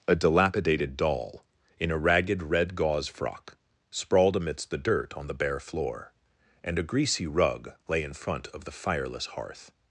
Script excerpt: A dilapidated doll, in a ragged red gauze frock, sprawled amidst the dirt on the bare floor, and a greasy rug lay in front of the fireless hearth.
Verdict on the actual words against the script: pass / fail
pass